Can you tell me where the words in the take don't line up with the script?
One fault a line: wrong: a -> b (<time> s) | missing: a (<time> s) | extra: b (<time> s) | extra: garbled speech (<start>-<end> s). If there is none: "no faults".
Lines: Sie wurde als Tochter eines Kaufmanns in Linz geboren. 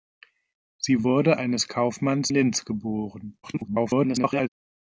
missing: als Tochter (1.4 s)
missing: in (2.3 s)
extra: garbled speech (3.4-4.5 s)